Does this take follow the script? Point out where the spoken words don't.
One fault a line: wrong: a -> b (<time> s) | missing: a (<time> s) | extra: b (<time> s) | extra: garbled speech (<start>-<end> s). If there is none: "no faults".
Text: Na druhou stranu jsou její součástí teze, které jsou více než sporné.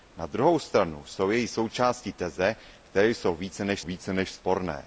extra: více než (3.8 s)